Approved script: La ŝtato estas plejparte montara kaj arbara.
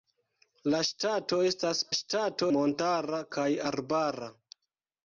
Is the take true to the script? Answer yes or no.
no